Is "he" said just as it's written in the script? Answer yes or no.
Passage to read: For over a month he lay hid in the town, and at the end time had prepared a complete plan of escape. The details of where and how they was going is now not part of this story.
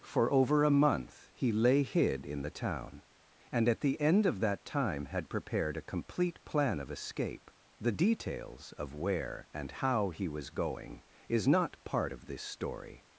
yes